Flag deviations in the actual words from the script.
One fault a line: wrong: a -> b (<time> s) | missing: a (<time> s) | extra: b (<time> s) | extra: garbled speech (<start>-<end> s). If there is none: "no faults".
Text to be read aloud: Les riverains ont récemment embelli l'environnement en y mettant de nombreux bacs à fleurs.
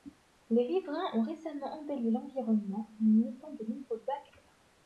missing: à (4.3 s)